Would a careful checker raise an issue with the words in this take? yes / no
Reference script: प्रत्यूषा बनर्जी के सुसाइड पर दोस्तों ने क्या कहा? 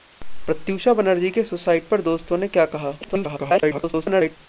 yes